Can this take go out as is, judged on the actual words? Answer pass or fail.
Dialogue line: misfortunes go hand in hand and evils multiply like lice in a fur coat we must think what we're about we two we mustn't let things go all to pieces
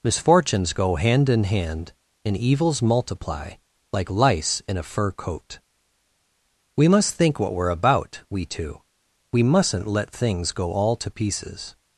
pass